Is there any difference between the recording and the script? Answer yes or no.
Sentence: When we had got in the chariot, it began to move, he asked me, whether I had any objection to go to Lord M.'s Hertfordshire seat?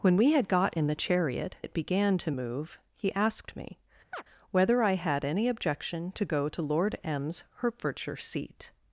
no